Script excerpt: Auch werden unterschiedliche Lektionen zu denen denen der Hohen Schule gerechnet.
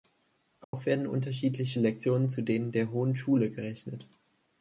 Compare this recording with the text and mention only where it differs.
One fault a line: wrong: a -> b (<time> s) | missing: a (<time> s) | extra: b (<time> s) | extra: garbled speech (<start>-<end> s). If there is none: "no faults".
missing: denen (2.7 s)